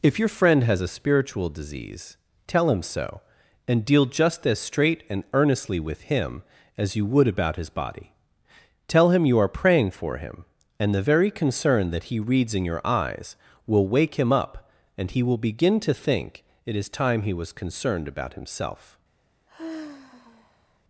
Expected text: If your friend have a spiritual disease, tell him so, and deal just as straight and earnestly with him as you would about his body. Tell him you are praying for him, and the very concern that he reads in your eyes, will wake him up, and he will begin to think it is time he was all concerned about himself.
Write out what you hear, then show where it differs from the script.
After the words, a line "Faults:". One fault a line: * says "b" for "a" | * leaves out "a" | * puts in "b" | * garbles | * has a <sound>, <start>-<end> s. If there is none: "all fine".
If your friend has a spiritual disease, tell him so, and deal just as straight and earnestly with him as you would about his body. Tell him you are praying for him, and the very concern that he reads in your eyes, will wake him up, and he will begin to think it is time he was concerned about himself.
Faults:
* says "has" for "have"
* leaves out "all"
* has a sigh, 19.5-20.8 s